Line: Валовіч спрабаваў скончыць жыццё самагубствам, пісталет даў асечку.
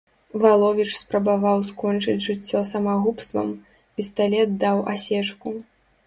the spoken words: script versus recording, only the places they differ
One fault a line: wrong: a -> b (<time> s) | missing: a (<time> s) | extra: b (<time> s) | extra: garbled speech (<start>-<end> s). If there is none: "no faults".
no faults